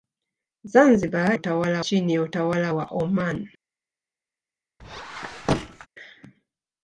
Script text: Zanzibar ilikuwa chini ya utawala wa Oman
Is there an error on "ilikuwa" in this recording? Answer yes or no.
yes